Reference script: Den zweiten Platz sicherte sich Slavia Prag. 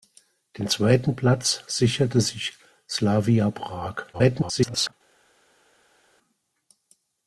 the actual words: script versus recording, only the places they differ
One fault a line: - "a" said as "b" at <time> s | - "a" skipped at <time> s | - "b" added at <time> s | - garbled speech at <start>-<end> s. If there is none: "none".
- garbled speech at 4.1-4.9 s